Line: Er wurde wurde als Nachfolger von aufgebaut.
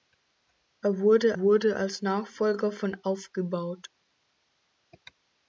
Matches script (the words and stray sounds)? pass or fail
pass